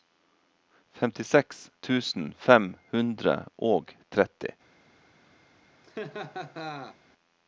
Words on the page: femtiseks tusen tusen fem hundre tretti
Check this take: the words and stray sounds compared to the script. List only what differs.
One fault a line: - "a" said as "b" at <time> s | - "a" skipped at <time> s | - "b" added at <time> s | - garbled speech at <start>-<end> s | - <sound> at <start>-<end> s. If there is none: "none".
- "tusen" skipped at 2.3 s
- "og" added at 3.7 s
- laugh at 5.8-7.0 s